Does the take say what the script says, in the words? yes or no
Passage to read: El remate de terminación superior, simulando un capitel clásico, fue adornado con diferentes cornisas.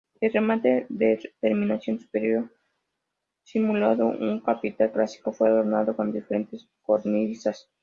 yes